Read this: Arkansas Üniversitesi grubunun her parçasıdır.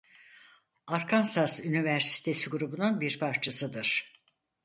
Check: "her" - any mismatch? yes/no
yes